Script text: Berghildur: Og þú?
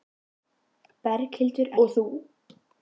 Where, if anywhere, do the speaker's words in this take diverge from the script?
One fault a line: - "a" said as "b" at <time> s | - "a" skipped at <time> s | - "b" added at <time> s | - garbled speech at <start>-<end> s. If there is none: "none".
none